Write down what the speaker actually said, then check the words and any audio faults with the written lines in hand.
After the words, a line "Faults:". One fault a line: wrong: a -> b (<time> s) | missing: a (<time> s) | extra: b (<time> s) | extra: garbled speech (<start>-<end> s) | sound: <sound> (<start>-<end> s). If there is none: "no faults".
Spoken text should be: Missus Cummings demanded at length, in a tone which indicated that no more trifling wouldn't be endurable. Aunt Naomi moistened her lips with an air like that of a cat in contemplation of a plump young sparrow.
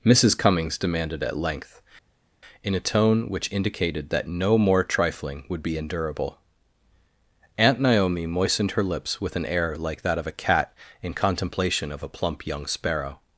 Missus Cummings demanded at length, in a tone which indicated that no more trifling would be endurable. Aunt Naomi moistened her lips with an air like that of a cat in contemplation of a plump young sparrow.
Faults:
wrong: wouldn't -> would (5.5 s)